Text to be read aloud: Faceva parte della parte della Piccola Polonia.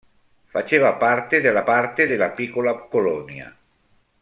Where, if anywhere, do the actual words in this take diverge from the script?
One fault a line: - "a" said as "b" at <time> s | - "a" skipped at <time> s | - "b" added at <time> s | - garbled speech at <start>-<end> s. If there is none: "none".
none